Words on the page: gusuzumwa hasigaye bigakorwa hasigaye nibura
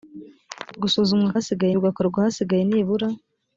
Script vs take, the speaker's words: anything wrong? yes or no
no